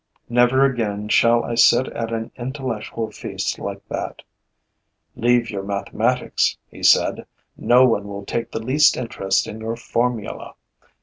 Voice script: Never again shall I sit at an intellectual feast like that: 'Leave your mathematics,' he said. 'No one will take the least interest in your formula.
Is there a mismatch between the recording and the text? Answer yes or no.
no